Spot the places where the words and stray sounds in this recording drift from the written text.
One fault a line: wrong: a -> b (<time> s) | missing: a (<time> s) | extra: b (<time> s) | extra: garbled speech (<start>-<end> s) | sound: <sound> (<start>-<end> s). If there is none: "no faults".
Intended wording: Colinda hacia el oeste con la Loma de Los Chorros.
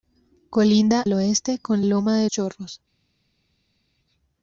missing: hacia (1.1 s)
missing: la (1.8 s)
missing: Los (2.3 s)